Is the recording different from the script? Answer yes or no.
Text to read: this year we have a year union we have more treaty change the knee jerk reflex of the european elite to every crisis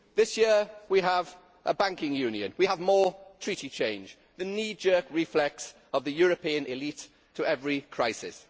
yes